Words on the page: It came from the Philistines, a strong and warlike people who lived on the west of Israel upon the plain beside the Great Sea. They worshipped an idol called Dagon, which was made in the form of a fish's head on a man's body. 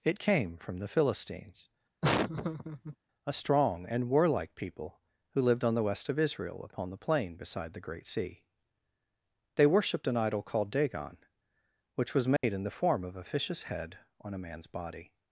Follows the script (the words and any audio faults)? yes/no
no